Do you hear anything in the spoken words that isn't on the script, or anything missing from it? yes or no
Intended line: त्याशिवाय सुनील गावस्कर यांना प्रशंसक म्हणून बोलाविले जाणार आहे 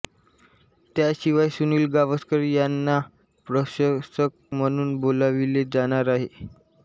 no